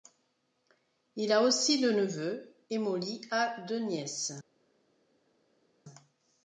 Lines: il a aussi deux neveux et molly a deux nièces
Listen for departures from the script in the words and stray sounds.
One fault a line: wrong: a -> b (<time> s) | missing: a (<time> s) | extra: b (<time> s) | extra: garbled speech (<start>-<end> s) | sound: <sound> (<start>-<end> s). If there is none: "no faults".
no faults